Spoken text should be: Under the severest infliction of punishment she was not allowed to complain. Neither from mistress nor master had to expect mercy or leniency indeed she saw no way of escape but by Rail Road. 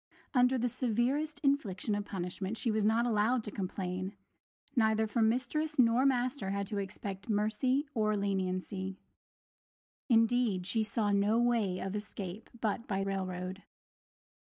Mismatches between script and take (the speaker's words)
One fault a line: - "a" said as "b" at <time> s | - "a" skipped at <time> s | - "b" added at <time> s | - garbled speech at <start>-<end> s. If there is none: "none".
none